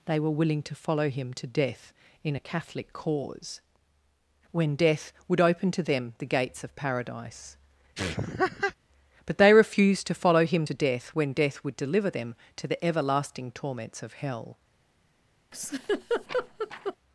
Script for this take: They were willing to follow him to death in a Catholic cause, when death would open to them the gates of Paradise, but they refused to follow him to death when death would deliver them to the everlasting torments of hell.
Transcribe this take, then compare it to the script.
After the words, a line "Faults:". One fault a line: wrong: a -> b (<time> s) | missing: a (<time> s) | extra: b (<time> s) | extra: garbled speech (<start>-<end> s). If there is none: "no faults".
They were willing to follow him to death in a Catholic cause, when death would open to them the gates of Paradise, but they refused to follow him to death when death would deliver them to the everlasting torments of hell.
Faults:
no faults